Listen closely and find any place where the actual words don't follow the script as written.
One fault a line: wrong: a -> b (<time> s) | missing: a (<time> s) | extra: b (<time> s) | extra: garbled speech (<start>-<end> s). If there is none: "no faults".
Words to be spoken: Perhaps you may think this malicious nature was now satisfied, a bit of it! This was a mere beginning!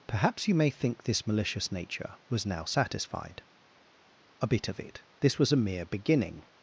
no faults